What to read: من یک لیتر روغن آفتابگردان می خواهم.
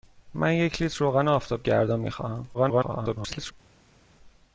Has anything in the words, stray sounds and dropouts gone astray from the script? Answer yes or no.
yes